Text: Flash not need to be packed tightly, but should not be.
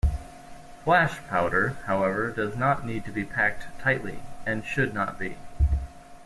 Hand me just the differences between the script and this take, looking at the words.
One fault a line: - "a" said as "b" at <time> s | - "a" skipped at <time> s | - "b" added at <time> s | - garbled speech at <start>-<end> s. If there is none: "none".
- "powder however does" added at 1.3 s
- "but" said as "and" at 4.5 s